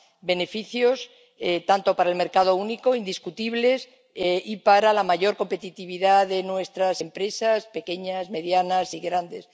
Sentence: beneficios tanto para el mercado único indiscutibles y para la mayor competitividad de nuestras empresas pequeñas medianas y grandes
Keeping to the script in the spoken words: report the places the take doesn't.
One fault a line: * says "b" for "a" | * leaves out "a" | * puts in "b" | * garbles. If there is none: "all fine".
all fine